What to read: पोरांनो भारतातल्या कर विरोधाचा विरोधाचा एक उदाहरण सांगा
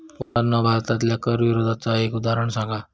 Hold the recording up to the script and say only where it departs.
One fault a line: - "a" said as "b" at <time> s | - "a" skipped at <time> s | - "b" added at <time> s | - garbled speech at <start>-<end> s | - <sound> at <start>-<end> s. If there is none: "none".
- dropout at 0.2-0.4 s
- "विरोधाचा" skipped at 2.0 s